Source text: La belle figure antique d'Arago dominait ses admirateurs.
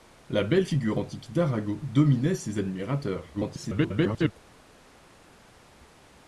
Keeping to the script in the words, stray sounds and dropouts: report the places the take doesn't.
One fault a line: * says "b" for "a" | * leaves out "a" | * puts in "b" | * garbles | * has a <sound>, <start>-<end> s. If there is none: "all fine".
* garbles